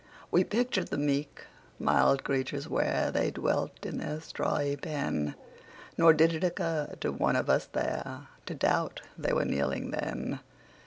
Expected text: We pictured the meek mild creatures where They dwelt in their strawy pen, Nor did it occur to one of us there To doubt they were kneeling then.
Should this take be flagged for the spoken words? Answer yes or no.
no